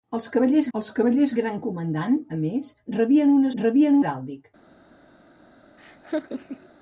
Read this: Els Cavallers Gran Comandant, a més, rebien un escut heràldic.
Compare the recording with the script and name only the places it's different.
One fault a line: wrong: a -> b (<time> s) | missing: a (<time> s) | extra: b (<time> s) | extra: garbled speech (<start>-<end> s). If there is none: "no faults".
extra: els Cavallers (0.8 s)
wrong: escut -> rebien (3.6 s)